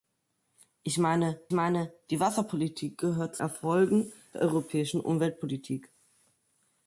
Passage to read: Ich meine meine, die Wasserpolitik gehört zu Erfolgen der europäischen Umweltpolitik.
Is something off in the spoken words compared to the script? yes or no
no